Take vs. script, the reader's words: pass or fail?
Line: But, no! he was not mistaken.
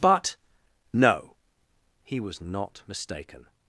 pass